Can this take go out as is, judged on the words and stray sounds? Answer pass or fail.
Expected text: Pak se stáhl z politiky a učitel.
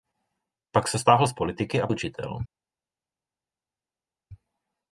pass